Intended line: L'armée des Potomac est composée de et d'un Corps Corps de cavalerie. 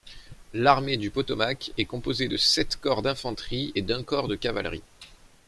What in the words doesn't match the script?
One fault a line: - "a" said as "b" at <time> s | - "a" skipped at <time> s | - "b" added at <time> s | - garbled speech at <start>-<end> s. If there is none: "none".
- "des" said as "du" at 1.0 s
- "sept Corps d'infanterie" added at 2.4 s
- "Corps" skipped at 4.3 s